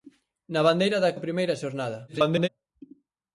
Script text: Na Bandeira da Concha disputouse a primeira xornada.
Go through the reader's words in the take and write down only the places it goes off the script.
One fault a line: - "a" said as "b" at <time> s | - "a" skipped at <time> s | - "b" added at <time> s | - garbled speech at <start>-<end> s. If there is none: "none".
- "Concha disputouse" skipped at 1.1 s
- garbled speech at 2.1-2.5 s